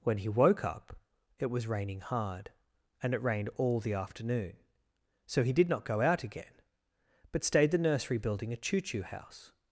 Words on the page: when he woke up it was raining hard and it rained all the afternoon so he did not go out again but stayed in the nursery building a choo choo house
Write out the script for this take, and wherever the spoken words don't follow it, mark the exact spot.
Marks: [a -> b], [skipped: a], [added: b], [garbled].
when he woke up it was raining hard and it rained all the afternoon so he did not go out again but stayed [skipped: in] the nursery building a choo choo house